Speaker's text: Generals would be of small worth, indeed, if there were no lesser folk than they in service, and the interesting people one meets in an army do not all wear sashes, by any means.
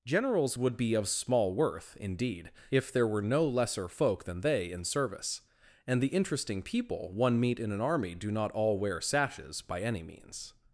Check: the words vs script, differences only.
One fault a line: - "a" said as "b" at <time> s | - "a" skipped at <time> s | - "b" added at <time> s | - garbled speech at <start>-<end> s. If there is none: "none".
- "meets" said as "meet" at 7.4 s